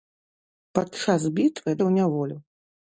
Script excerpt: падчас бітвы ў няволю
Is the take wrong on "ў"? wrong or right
right